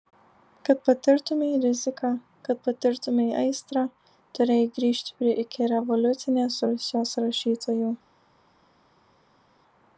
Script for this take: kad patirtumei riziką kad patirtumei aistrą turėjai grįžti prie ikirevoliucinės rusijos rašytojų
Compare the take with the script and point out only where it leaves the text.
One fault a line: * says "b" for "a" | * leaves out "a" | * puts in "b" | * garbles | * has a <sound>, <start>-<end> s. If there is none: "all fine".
all fine